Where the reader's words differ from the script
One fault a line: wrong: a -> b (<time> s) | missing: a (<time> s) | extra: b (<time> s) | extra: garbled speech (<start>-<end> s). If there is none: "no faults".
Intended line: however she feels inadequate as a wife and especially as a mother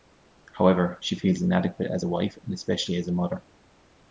no faults